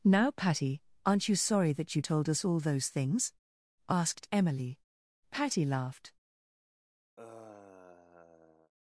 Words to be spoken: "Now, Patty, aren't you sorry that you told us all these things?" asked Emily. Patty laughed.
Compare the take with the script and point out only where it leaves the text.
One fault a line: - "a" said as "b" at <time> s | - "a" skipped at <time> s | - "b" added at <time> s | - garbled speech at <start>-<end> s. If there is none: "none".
- "these" said as "those" at 2.6 s